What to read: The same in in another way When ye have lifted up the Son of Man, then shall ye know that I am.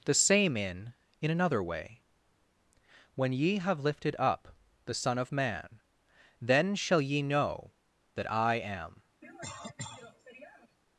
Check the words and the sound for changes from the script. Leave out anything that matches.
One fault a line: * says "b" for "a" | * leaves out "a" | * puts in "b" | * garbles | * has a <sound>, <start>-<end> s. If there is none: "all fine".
* has a cough, 9.2-10.8 s